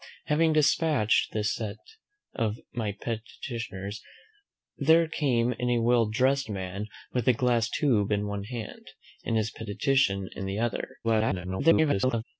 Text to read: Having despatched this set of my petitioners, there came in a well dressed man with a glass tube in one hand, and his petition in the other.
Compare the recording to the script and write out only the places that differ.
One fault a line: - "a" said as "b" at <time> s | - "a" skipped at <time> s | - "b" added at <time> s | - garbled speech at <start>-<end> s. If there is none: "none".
- garbled speech at 11.0-12.2 s